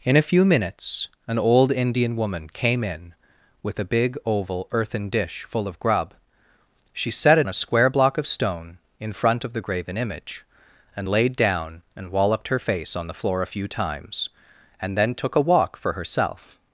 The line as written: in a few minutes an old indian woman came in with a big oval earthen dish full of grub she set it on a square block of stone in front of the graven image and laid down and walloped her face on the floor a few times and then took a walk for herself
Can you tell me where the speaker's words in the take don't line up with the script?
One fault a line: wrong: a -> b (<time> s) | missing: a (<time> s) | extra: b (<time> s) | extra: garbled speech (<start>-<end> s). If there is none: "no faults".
missing: on (7.5 s)